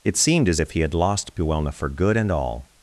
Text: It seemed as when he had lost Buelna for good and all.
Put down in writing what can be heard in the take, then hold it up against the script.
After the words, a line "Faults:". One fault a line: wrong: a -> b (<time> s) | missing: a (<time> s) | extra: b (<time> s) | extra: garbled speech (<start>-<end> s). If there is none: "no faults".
It seemed as if he had lost Buelna for good and all.
Faults:
wrong: when -> if (0.6 s)